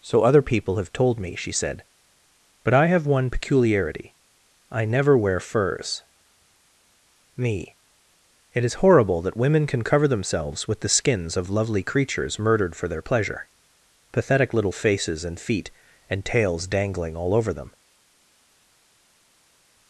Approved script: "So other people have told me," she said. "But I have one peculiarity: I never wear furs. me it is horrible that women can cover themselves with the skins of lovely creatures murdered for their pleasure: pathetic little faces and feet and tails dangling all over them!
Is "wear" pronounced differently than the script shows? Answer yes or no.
no